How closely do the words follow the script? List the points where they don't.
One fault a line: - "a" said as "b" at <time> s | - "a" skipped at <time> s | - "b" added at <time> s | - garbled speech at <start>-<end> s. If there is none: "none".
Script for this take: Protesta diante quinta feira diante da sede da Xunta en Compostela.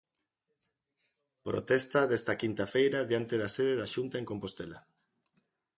- "diante" said as "desta" at 2.1 s